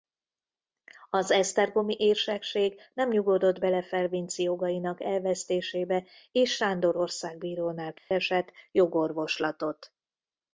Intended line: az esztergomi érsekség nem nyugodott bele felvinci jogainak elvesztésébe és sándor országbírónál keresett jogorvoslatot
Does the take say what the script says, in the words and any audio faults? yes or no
no